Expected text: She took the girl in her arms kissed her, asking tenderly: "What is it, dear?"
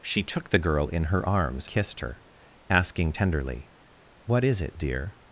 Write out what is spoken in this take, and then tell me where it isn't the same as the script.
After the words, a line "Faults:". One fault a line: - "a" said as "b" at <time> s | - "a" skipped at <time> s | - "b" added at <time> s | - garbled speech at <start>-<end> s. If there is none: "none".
She took the girl in her arms kissed her, asking tenderly: "What is it, dear?"
Faults:
none